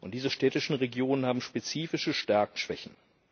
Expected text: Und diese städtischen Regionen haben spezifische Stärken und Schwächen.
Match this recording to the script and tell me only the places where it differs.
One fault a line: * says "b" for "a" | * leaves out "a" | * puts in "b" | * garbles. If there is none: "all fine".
* leaves out "und"